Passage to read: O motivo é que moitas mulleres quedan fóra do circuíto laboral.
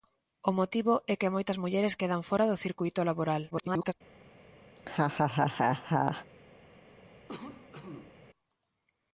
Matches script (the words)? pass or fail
fail